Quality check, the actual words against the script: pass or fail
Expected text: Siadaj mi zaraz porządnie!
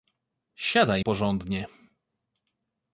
fail